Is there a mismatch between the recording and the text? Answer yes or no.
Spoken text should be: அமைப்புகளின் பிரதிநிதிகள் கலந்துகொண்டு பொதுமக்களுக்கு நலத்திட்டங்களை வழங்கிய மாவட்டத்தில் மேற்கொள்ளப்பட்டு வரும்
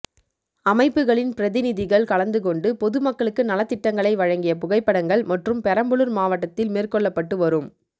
yes